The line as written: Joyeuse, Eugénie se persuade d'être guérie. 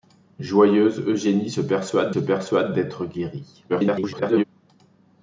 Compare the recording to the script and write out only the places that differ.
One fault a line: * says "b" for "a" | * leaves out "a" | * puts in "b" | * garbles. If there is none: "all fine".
* puts in "se persuade"
* garbles